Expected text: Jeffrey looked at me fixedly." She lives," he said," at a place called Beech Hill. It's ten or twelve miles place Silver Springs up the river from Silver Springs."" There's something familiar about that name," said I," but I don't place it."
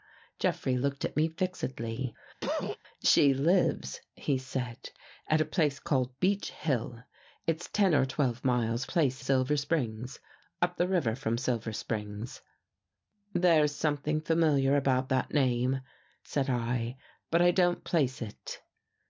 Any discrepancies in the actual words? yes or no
no